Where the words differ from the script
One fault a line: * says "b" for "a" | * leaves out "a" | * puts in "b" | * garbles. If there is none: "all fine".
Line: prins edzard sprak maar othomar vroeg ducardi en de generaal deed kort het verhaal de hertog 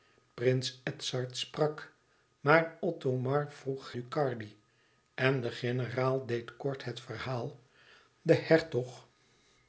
all fine